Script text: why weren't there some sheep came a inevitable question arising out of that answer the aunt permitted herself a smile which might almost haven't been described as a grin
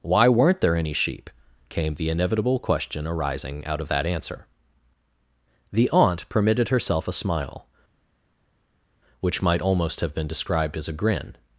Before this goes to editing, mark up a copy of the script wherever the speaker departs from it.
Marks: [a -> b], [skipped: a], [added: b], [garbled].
why weren't there [some -> any] sheep came [a -> the] inevitable question arising out of that answer the aunt permitted herself a smile which might almost [haven't -> have] been described as a grin